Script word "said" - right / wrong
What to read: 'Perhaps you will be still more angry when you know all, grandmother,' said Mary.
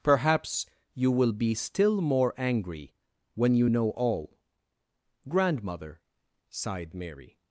wrong